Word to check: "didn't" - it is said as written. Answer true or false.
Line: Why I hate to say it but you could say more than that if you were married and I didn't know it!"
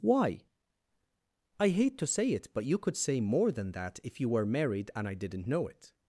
true